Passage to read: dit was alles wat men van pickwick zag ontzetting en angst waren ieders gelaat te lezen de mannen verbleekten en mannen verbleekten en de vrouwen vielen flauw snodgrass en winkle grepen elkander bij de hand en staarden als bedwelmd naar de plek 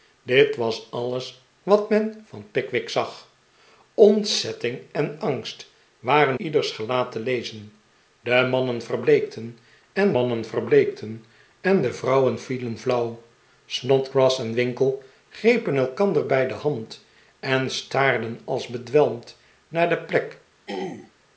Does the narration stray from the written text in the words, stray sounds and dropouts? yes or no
yes